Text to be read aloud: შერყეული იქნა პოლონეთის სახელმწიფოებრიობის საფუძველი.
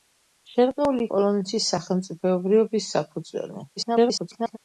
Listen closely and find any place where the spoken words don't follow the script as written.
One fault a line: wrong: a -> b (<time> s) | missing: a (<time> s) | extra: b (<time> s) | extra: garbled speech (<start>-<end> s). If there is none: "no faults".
missing: იქნა (1.0 s)
extra: garbled speech (3.8-4.6 s)